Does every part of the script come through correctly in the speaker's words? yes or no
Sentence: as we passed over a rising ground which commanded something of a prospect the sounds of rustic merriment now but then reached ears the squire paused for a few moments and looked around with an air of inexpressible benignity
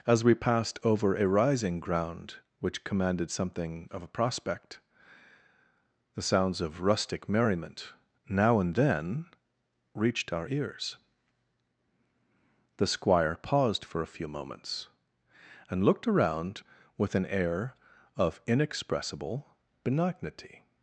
no